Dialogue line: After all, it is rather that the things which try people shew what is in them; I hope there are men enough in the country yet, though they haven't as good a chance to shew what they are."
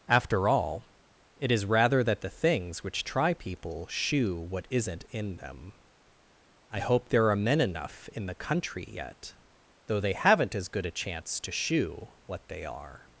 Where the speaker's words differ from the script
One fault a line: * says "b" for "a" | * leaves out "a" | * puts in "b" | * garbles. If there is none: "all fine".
* says "isn't" for "is"